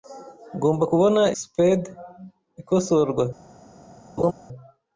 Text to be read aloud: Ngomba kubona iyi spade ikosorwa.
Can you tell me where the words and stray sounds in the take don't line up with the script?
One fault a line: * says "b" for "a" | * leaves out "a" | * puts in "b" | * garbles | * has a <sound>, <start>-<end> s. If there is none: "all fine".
* leaves out "iyi"
* has a laugh, 4.2-4.3 s